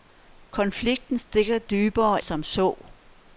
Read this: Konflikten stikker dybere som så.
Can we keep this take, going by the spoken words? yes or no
yes